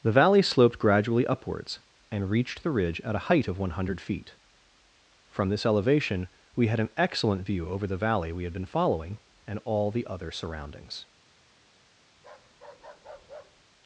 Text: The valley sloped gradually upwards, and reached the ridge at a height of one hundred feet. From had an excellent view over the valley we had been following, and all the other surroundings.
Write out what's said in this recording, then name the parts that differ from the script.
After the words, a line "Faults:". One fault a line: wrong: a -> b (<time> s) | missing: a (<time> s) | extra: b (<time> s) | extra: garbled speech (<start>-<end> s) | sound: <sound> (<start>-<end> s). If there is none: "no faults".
The valley sloped gradually upwards, and reached the ridge at a height of one hundred feet. From this elevation we had an excellent view over the valley we had been following, and all the other surroundings.
Faults:
extra: this elevation we (5.5 s)
sound: bark (12.2-13.6 s)